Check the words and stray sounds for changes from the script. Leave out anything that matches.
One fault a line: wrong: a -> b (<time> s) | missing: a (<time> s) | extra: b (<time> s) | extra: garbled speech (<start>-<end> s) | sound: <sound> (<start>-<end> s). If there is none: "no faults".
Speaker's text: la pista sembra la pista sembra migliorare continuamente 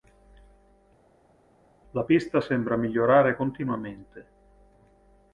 missing: la pista sembra (2.8 s)